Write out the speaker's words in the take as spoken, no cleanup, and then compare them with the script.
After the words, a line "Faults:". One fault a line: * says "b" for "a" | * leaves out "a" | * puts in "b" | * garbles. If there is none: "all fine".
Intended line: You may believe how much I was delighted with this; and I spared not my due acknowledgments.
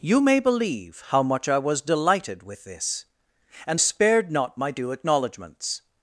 You may believe how much I was delighted with this; and spared not my due acknowledgments.
Faults:
* leaves out "I"